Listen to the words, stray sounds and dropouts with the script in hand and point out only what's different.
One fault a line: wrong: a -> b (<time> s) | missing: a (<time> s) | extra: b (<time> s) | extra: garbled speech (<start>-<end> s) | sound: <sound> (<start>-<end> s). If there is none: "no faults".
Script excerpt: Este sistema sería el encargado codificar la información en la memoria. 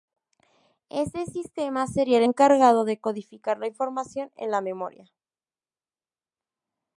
extra: de (2.8 s)